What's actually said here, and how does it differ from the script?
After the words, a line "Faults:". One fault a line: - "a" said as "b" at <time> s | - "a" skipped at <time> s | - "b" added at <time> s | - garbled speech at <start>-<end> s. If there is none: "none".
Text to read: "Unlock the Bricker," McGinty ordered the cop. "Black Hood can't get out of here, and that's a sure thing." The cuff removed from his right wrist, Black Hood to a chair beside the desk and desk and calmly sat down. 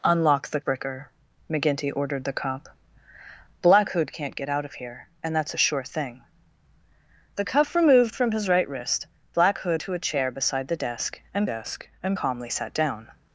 "Unlock the Bricker," McGinty ordered the cop. "Black Hood can't get out of here, and that's a sure thing." The cuff removed from his right wrist, Black Hood to a chair beside the desk and desk and calmly sat down.
Faults:
none